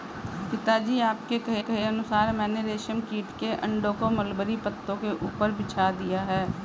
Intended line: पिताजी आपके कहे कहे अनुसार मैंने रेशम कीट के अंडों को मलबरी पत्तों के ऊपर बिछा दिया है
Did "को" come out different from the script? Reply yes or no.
no